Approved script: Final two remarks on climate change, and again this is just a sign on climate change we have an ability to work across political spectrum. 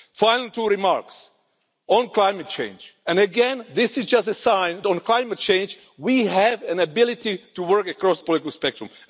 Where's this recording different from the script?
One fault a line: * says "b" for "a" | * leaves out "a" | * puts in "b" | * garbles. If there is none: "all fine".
all fine